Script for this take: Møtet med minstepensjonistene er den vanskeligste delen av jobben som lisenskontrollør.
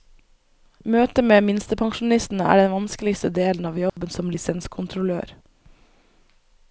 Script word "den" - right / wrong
right